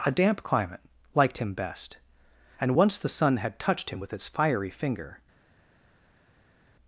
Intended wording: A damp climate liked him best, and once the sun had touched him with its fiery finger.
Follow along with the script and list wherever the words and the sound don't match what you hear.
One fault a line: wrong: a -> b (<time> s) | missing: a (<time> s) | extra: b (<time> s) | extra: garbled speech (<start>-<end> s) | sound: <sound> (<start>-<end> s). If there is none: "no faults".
no faults